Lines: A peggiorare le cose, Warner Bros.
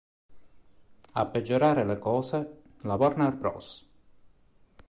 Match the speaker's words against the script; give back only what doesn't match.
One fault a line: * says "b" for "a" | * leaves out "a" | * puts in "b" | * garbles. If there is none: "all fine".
* puts in "la"